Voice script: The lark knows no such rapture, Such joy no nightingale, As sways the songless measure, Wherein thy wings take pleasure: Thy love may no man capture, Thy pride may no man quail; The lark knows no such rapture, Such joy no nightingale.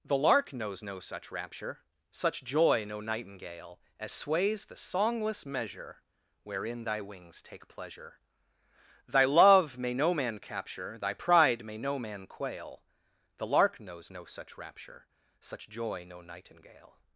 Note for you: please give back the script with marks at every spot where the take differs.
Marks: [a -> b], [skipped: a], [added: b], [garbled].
The lark knows no such rapture, Such joy no nightingale, As sways the songless measure, Wherein thy wings take pleasure: Thy love may no man capture, Thy pride may no man quail; The lark knows no such rapture, Such joy no nightingale.